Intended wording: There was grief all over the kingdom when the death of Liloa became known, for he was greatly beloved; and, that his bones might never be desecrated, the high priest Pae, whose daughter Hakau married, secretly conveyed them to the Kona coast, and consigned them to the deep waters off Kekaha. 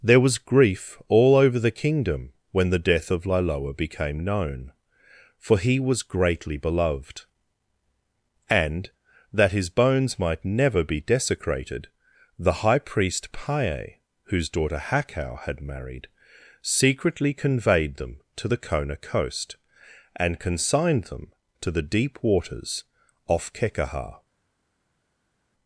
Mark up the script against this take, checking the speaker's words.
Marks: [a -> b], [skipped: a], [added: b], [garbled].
There was grief all over the kingdom when the death of Liloa became known, for he was greatly beloved; and, that his bones might never be desecrated, the high priest Pae, whose daughter Hakau [added: had] married, secretly conveyed them to the Kona coast, and consigned them to the deep waters off Kekaha.